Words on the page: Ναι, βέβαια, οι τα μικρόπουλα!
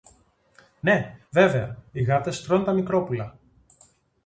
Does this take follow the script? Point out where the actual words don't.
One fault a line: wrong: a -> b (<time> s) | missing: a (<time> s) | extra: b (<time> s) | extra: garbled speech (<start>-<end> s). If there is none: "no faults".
extra: γάτες τρων (2.0 s)